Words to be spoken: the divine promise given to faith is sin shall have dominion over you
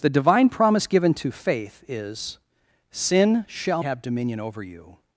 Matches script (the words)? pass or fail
pass